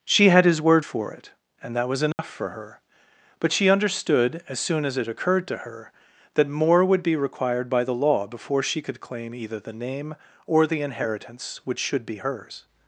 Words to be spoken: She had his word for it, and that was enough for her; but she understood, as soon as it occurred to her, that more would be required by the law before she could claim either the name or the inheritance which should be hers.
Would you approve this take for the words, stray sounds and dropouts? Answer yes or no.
no